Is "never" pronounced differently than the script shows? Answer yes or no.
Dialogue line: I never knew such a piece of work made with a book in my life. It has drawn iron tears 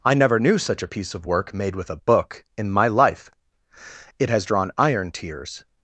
no